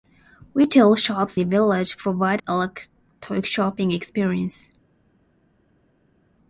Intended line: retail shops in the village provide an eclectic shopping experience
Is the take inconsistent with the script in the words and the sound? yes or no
yes